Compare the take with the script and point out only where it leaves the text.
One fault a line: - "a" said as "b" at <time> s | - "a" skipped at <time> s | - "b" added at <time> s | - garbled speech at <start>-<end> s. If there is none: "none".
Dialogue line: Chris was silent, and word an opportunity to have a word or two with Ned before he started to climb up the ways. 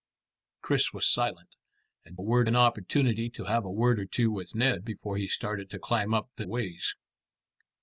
none